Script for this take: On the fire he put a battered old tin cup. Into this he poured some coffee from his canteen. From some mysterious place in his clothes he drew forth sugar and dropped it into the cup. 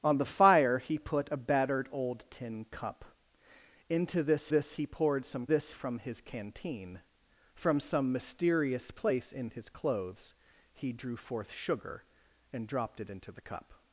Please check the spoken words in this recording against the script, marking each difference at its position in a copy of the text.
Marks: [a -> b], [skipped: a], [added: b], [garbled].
On the fire he put a battered old tin cup. Into this [added: this] he poured some [coffee -> this] from his canteen. From some mysterious place in his clothes he drew forth sugar and dropped it into the cup.